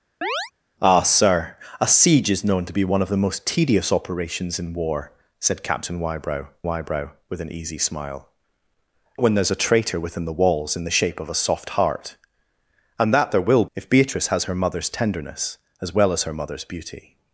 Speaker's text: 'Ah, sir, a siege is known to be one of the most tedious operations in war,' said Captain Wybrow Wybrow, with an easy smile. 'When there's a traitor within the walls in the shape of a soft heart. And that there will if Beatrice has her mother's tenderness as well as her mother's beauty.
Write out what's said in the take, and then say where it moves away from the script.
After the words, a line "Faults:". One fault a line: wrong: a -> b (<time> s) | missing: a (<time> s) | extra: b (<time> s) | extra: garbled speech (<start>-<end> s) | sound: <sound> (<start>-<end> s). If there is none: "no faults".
'Ah, sir, a siege is known to be one of the most tedious operations in war,' said Captain Wybrow Wybrow, with an easy smile. 'When there's a traitor within the walls in the shape of a soft heart. And that there will if Beatrice has her mother's tenderness as well as her mother's beauty.
Faults:
sound: chirp (0.2-0.5 s)